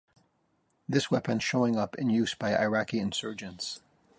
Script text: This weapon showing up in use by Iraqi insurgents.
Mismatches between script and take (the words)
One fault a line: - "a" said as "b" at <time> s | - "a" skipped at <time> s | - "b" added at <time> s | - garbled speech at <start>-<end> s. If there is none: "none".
none